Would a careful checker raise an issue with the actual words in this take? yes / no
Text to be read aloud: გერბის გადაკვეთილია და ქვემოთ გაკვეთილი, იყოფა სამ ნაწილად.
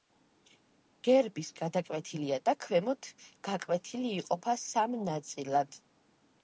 no